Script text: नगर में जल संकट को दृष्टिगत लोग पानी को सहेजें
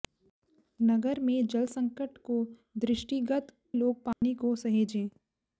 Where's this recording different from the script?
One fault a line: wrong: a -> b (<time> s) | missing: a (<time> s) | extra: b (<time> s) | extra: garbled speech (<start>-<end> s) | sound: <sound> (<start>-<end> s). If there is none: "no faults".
sound: dropout (4.1-4.2 s)